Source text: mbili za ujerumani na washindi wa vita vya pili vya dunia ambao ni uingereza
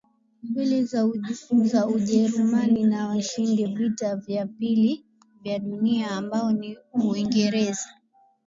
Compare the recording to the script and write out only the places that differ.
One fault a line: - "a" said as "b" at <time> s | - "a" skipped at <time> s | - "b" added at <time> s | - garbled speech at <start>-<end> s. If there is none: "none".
- "wa" skipped at 3.7 s